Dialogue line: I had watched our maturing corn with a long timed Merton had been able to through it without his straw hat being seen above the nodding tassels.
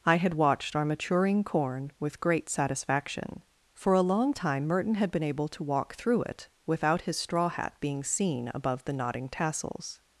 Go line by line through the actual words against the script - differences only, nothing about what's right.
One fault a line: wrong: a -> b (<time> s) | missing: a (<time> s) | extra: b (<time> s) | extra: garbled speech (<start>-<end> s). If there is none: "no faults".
extra: great satisfaction For (2.2 s)
wrong: timed -> time (4.3 s)
extra: walk (5.6 s)